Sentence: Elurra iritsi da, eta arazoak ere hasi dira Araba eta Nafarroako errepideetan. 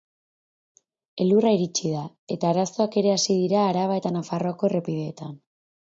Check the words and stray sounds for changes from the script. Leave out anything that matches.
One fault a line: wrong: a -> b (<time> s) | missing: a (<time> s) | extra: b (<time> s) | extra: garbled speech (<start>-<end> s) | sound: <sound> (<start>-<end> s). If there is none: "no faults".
no faults